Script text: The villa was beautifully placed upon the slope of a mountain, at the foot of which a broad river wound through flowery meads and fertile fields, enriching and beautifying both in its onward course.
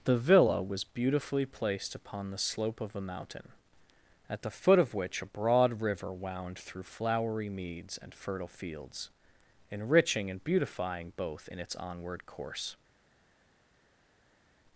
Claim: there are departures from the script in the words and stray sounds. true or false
false